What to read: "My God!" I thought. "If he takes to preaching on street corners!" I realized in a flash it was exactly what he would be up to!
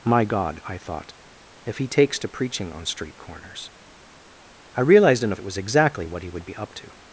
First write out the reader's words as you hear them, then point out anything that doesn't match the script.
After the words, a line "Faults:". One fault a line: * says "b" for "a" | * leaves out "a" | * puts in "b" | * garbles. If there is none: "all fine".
"My God!" I thought. "If he takes to preaching on street corners!" I realized in a it was exactly what he would be up to!
Faults:
* leaves out "flash"